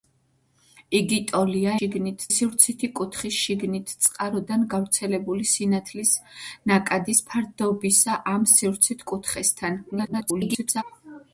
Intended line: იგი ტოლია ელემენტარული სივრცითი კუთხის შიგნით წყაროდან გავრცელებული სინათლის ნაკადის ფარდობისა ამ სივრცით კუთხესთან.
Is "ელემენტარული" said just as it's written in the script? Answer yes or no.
no